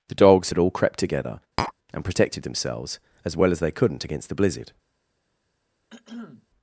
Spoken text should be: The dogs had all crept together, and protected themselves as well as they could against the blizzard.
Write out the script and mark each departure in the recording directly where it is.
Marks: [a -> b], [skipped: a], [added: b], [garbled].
The dogs had all crept together, and protected themselves as well as they [could -> couldn't] against the blizzard.